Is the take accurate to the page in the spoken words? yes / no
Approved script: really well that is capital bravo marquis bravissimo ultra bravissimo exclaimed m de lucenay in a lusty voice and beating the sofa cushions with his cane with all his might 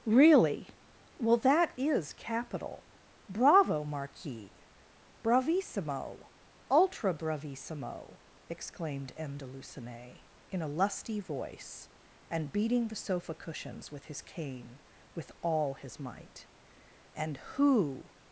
no